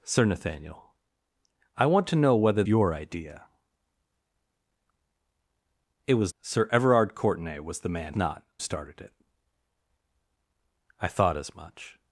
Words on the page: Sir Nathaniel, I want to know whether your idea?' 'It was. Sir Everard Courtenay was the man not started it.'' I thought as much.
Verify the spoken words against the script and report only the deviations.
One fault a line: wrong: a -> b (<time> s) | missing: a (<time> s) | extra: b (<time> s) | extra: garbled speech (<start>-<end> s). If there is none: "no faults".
no faults